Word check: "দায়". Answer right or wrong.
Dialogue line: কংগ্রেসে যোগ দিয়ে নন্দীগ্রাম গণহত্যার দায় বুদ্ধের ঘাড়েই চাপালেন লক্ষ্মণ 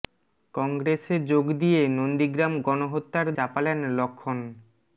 wrong